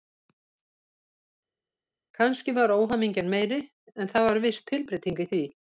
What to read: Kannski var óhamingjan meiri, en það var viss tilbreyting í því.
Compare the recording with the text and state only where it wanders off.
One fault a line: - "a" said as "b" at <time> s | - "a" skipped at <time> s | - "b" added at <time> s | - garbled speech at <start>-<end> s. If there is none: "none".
none